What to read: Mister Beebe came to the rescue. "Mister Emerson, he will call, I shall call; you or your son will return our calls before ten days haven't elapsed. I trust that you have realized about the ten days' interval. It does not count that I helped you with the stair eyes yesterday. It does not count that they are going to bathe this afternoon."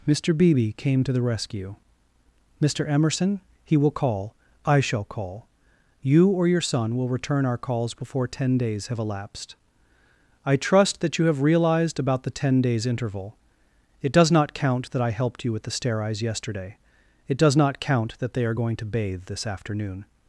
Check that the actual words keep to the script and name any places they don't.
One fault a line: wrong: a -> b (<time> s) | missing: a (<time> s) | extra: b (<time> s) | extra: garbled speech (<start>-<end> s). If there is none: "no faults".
wrong: haven't -> have (8.9 s)